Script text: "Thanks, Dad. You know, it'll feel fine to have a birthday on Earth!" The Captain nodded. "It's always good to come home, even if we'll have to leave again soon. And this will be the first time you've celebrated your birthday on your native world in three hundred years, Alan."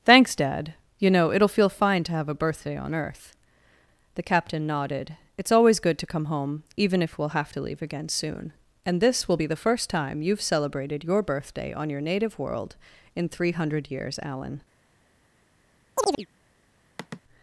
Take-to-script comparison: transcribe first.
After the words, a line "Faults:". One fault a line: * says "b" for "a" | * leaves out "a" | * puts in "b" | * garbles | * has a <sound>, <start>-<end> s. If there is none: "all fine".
"Thanks, Dad. You know, it'll feel fine to have a birthday on Earth!" The Captain nodded. "It's always good to come home, even if we'll have to leave again soon. And this will be the first time you've celebrated your birthday on your native world in three hundred years, Alan."
Faults:
* has a chirp, 16.0-16.3 s
* has a sigh, 17.0-17.2 s